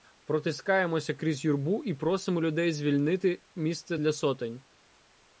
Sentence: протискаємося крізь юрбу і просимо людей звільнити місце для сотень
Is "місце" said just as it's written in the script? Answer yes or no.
yes